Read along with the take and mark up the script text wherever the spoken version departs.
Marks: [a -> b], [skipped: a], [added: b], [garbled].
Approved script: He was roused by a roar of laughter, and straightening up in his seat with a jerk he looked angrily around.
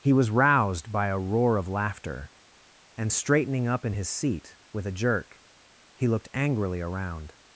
He was roused by a roar of laughter, and straightening up in his seat with a jerk he looked angrily around.